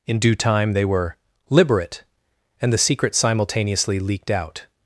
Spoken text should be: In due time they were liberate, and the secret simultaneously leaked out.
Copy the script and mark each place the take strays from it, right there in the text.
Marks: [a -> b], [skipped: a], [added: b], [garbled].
In due time they were liberate, and the secret simultaneously leaked out.